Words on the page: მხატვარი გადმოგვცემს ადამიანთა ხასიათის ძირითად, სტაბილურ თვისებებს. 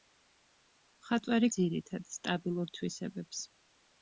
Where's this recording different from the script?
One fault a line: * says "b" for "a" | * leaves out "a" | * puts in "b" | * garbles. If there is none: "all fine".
* leaves out "გადმოგვცემს ადამიანთა ხასიათის"